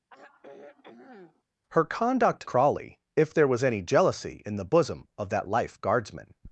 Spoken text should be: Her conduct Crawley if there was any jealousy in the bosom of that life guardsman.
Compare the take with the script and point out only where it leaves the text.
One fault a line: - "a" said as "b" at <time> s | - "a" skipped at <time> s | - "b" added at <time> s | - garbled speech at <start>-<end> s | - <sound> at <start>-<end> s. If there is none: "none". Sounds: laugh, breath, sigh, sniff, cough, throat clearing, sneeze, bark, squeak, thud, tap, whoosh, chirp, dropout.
- sigh at 0.1-1.4 s